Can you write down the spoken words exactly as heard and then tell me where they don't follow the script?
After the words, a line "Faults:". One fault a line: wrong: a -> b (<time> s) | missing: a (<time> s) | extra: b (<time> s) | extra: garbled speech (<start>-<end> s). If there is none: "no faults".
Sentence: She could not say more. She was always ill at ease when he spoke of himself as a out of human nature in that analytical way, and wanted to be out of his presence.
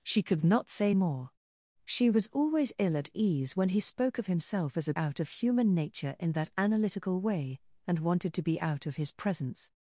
She could not say more. She was always ill at ease when he spoke of himself as a out of human nature in that analytical way, and wanted to be out of his presence.
Faults:
no faults